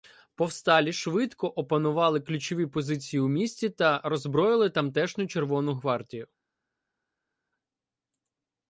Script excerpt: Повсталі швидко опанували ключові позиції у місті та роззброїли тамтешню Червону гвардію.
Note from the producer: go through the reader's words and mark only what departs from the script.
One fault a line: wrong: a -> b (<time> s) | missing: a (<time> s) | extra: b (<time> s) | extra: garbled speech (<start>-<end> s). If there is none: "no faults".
no faults